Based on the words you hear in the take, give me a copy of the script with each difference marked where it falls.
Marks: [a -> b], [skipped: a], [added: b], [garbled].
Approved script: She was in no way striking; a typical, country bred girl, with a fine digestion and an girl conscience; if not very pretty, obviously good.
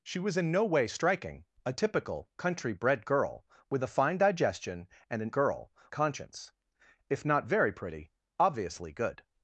She was in no way striking; a typical, country bred girl, with a fine digestion and an girl conscience; if not very pretty, obviously good.